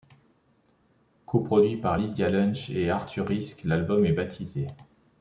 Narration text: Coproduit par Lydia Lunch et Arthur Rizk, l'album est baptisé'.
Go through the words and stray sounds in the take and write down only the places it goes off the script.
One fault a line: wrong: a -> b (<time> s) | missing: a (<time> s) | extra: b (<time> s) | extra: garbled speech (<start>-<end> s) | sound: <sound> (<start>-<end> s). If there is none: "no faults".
no faults